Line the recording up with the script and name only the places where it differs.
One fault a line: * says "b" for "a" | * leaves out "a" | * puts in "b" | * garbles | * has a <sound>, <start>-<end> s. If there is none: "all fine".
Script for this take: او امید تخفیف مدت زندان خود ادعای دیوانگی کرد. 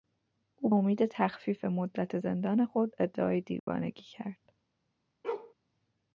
* has a dropout, 3.6-3.7 s
* has a bark, 5.2-5.5 s